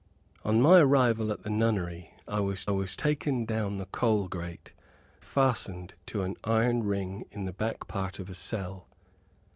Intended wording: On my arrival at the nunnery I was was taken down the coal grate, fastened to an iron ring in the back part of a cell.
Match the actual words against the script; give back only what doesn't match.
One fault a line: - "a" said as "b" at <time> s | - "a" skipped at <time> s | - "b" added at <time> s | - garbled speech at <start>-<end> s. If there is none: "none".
none